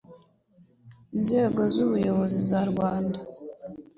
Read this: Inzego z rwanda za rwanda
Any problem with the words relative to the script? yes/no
yes